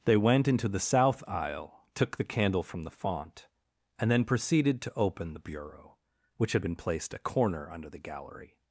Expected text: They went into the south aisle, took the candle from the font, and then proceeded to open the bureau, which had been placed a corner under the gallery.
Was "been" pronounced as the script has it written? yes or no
yes